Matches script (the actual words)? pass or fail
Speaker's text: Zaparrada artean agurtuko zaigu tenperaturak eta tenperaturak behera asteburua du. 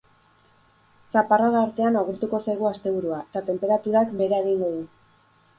fail